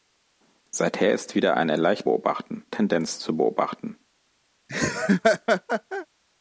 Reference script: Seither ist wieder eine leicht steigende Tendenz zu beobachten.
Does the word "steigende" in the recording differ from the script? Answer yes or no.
yes